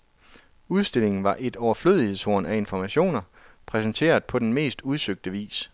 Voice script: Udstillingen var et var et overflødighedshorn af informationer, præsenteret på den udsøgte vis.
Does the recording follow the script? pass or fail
fail